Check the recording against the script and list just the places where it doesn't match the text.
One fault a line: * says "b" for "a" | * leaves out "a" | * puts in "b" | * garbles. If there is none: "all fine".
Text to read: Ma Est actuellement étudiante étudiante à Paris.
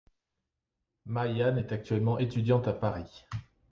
* puts in "Yan"
* leaves out "étudiante"